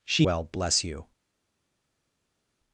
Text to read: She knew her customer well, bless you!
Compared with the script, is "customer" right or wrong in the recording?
wrong